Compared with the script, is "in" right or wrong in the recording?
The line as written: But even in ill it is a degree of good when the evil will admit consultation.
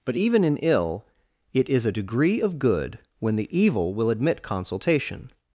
right